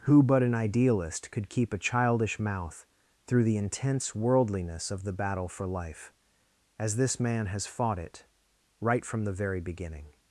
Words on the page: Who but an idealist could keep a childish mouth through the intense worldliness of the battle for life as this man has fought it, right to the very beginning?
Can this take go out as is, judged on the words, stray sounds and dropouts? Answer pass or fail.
fail